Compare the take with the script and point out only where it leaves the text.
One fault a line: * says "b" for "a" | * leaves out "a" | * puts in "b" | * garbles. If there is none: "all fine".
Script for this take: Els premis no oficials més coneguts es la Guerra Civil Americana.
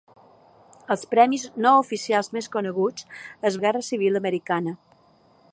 all fine